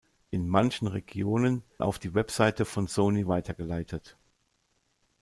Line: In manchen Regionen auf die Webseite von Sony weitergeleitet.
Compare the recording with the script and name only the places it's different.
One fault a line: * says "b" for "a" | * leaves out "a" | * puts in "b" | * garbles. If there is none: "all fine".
all fine